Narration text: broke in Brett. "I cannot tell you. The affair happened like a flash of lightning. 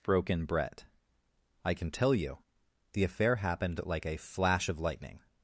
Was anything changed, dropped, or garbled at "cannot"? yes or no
yes